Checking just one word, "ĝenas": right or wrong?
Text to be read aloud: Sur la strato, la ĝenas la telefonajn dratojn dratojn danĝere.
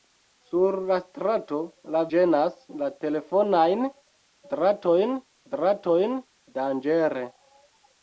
right